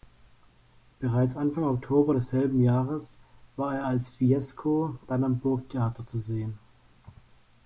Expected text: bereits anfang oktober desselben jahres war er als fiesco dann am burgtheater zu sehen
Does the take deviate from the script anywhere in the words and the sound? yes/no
no